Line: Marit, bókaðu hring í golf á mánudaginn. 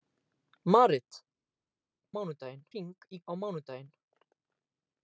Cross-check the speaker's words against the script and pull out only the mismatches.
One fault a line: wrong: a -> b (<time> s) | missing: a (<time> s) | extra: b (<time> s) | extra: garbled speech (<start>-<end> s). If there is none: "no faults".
wrong: bókaðu -> mánudaginn (2.2 s)
missing: golf (3.2 s)